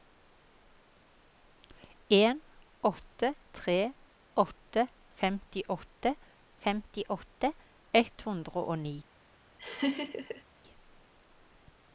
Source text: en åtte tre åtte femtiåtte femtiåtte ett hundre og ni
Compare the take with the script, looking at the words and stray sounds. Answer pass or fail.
fail